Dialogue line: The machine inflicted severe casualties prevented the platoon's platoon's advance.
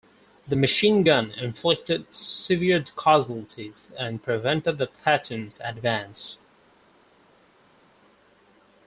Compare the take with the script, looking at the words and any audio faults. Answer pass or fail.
fail